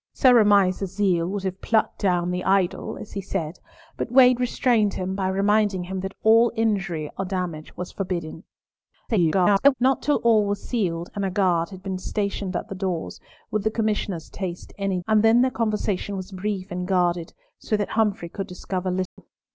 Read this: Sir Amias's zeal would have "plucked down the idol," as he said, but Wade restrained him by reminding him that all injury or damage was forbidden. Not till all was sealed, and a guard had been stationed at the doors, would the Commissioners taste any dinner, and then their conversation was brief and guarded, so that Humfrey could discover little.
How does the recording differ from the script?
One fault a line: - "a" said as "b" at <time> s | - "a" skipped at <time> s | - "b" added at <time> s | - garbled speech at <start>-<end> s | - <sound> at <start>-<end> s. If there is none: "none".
- garbled speech at 9.1-9.7 s
- "dinner" skipped at 15.0 s
- dropout at 19.1-19.2 s